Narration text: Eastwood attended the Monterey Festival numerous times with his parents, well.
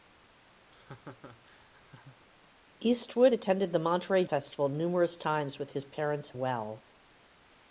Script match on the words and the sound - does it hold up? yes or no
no